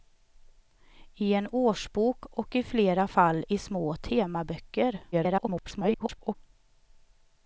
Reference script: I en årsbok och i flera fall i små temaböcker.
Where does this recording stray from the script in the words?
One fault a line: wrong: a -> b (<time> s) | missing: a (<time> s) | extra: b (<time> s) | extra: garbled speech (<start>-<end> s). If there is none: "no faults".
extra: garbled speech (5.1-6.4 s)